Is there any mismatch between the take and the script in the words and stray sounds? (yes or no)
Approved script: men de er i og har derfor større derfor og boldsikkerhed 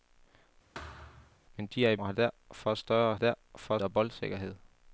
yes